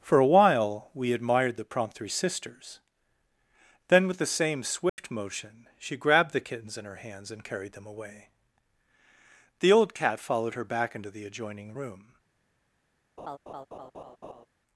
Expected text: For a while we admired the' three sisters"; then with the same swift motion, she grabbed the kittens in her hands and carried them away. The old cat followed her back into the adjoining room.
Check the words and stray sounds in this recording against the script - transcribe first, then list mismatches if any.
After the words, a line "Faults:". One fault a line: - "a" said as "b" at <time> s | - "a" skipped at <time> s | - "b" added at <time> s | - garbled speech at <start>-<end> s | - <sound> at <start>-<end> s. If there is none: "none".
For a while we admired the' prompt three sisters"; then with the same swift motion, she grabbed the kittens in her hands and carried them away. The old cat followed her back into the adjoining room.
Faults:
- "prompt" added at 1.6 s
- dropout at 4.9-5.0 s
- laugh at 13.2-14.5 s